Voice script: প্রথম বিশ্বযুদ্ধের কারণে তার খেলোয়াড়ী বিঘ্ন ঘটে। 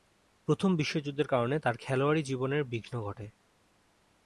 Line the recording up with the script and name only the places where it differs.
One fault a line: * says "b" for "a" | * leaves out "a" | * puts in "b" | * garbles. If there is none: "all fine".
* puts in "জীবনের"